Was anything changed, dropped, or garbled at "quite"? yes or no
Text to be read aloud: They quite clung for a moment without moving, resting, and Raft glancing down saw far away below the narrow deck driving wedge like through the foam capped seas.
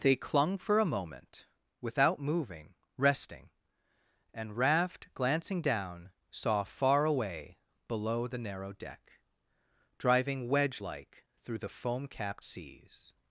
yes